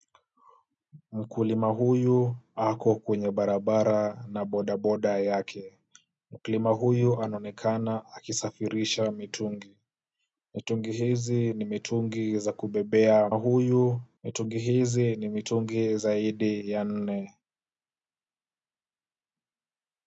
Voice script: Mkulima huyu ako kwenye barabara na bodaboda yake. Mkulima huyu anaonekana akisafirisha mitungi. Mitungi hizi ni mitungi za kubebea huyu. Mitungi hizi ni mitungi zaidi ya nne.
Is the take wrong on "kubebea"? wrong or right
right